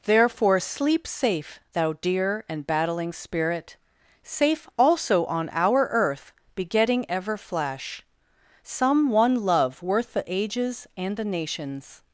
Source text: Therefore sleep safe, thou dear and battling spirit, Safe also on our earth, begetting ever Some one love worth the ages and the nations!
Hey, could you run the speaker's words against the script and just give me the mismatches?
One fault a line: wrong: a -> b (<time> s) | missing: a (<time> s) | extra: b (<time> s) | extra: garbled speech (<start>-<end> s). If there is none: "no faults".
extra: flash (7.4 s)